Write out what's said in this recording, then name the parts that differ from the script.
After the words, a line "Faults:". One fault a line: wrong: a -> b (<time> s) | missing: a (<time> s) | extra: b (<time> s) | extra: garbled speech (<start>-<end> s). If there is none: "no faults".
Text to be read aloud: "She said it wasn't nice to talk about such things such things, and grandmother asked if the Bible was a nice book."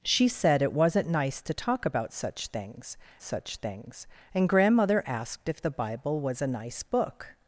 "She said it wasn't nice to talk about such things such things, and grandmother asked if the Bible was a nice book."
Faults:
no faults